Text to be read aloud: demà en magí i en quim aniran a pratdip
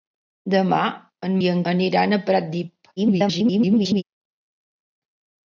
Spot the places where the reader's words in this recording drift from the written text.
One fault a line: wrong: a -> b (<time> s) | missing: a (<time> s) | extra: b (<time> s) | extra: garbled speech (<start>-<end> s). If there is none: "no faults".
missing: magí (1.4 s)
missing: quim (1.6 s)
extra: garbled speech (3.0-4.0 s)